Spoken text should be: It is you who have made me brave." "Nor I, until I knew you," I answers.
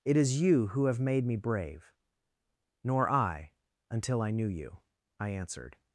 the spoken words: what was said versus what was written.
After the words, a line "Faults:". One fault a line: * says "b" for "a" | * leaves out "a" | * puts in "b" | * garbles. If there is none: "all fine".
It is you who have made me brave." "Nor I, until I knew you," I answered.
Faults:
* says "answered" for "answers"